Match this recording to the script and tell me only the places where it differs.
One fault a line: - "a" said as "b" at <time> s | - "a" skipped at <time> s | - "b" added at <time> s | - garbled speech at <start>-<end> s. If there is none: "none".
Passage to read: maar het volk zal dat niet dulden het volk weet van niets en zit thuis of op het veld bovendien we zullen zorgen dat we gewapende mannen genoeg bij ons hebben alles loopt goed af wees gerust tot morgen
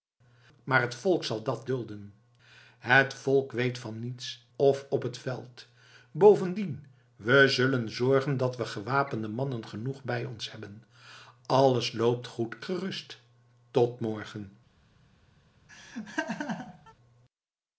- "niet" skipped at 1.7 s
- "en zit thuis" skipped at 4.5 s
- "af wees" skipped at 12.6 s